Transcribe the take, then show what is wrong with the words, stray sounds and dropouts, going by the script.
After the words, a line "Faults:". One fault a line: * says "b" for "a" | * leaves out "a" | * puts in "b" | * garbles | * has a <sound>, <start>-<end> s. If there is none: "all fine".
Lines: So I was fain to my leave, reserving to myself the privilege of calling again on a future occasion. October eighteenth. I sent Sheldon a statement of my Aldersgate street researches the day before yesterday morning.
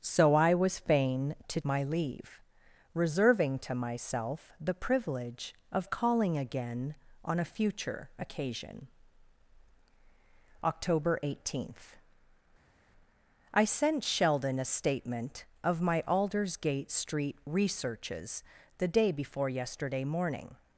So I was fain to my leave, reserving to myself the privilege of calling again on a future occasion. October eighteenth. I sent Sheldon a statement of my Aldersgate street researches the day before yesterday morning.
Faults:
all fine